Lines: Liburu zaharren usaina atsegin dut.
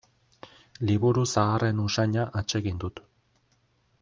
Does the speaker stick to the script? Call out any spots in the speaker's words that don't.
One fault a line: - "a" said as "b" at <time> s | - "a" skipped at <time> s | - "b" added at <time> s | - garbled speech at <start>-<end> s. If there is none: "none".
none